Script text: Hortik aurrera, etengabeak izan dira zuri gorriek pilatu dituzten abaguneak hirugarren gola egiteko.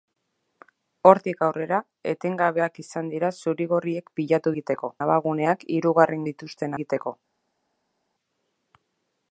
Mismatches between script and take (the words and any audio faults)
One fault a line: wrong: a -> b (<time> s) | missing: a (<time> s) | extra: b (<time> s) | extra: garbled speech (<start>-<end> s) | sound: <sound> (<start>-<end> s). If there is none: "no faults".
wrong: dituzten -> egiteko (4.6 s)
wrong: gola -> dituzten (6.3 s)